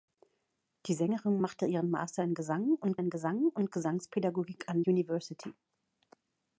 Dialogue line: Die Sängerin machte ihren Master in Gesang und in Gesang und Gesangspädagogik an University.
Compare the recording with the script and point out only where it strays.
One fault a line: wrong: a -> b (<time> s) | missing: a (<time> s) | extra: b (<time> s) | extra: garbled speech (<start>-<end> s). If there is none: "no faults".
no faults